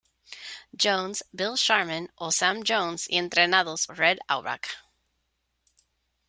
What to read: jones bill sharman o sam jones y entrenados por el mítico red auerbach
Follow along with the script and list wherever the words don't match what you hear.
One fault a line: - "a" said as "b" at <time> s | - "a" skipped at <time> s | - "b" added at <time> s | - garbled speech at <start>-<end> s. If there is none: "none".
- "por el mítico" skipped at 3.9 s